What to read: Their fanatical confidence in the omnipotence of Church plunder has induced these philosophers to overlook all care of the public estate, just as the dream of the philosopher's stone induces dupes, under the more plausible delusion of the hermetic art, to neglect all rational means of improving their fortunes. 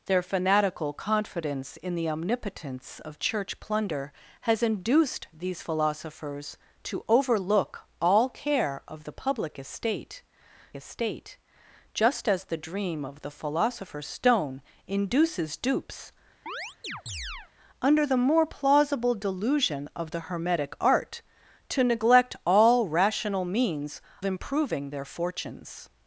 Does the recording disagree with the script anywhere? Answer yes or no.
yes